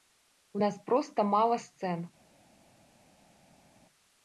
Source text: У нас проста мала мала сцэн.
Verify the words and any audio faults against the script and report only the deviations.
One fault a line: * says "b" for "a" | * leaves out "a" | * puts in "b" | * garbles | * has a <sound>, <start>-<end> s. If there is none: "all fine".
* leaves out "мала"